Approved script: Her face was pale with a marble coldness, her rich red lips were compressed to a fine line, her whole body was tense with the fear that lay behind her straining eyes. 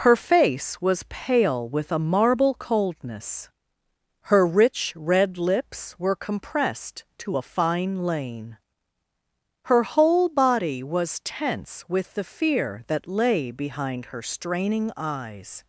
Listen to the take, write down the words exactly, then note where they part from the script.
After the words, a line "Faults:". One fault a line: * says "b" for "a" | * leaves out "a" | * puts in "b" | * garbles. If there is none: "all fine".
Her face was pale with a marble coldness, her rich red lips were compressed to a fine lane, her whole body was tense with the fear that lay behind her straining eyes.
Faults:
* says "lane" for "line"